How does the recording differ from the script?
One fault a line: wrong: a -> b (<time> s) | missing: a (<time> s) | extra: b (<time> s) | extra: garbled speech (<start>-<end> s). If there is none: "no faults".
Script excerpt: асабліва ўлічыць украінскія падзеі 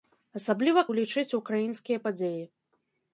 no faults